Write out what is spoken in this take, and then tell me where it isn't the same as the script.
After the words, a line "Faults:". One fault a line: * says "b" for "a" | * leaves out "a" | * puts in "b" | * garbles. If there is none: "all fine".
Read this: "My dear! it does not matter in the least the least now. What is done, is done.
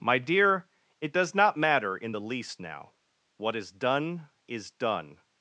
"My dear! it does not matter in the least now. What is done, is done.
Faults:
* leaves out "the least"